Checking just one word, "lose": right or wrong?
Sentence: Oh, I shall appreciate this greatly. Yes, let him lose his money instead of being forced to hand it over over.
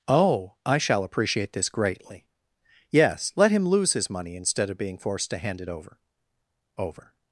right